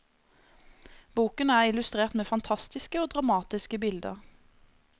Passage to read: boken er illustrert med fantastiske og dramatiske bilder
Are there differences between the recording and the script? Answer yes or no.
no